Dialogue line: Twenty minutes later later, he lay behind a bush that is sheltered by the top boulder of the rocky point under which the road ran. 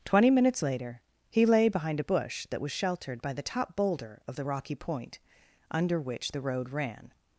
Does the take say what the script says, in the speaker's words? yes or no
no